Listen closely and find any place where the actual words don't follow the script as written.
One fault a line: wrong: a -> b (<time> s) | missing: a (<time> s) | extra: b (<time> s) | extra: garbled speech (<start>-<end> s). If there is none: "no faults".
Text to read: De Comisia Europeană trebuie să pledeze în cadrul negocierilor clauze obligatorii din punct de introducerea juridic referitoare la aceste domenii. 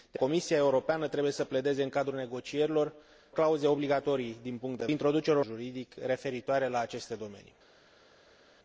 no faults